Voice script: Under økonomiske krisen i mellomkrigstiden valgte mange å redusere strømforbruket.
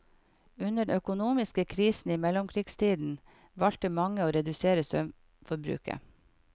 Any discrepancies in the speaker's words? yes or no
no